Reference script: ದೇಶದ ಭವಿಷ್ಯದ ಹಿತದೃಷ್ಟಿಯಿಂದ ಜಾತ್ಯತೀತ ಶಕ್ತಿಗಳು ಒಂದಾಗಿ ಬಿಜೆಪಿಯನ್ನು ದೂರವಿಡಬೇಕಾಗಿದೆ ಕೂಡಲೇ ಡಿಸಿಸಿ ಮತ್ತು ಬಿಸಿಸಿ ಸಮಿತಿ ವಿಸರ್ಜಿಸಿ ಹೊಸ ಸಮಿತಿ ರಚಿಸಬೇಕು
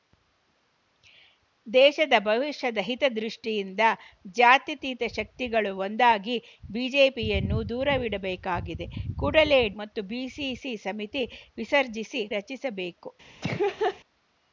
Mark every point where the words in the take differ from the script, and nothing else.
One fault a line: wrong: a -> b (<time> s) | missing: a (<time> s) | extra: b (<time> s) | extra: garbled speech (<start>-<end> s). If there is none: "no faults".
missing: ಡಿಸಿಸಿ (9.6 s)
missing: ಹೊಸ ಸಮಿತಿ (12.2 s)